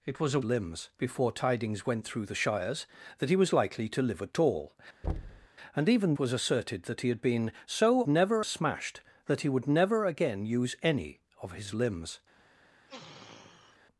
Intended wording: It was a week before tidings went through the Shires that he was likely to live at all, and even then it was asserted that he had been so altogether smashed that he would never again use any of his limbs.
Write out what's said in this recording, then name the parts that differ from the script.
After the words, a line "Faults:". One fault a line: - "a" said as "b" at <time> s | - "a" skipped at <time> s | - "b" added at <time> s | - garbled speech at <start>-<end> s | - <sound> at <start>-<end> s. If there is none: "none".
It was a limbs before tidings went through the Shires that he was likely to live at all, and even was asserted that he had been so never smashed that he would never again use any of his limbs.
Faults:
- "week" said as "limbs" at 0.4 s
- thud at 5.0-5.5 s
- "then it" skipped at 6.1 s
- "altogether" said as "never" at 8.1 s
- sniff at 12.9-13.8 s